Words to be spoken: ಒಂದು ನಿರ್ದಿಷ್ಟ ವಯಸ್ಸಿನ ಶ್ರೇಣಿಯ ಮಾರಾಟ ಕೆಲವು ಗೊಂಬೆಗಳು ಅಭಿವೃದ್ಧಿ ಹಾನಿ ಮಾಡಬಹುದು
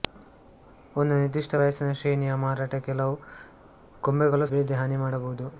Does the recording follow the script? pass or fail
pass